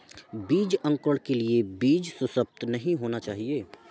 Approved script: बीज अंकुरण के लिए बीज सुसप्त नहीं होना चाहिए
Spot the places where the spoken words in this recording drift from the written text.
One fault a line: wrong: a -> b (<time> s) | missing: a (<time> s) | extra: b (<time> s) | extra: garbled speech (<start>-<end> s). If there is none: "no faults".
no faults